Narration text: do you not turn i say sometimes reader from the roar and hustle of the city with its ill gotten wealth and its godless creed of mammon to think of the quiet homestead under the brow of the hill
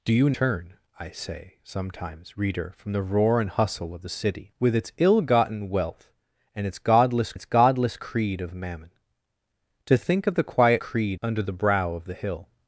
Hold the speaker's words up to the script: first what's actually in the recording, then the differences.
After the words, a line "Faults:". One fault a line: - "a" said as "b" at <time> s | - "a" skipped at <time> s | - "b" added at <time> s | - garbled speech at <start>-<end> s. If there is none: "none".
do you turn i say sometimes reader from the roar and hustle of the city with its ill gotten wealth and its godless its godless creed of mammon to think of the quiet creed under the brow of the hill
Faults:
- "not" skipped at 0.3 s
- "its godless" added at 7.3 s
- "homestead" said as "creed" at 10.8 s